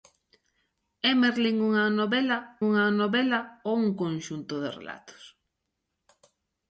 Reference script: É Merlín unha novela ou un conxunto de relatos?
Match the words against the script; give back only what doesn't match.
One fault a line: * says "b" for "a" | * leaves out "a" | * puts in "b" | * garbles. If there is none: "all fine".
* puts in "unha novela"